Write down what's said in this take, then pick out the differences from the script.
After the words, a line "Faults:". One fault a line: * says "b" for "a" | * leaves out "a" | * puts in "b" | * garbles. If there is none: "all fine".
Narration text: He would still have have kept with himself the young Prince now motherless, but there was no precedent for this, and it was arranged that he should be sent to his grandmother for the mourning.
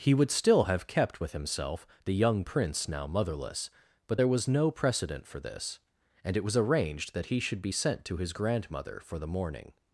He would still have kept with himself the young Prince now motherless, but there was no precedent for this, and it was arranged that he should be sent to his grandmother for the mourning.
Faults:
* leaves out "have"